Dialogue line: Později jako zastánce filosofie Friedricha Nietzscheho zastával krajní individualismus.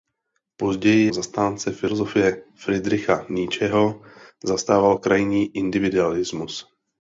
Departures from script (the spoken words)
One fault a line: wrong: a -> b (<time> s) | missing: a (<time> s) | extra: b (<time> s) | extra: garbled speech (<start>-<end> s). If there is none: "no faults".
missing: jako (1.1 s)